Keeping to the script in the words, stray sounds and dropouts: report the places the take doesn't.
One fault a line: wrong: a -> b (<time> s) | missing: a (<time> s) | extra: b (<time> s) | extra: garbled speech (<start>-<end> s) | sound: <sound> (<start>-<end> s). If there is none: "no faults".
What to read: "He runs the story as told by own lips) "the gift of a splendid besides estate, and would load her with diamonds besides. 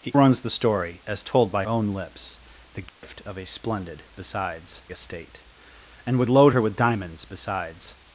sound: dropout (2.9-3.0 s)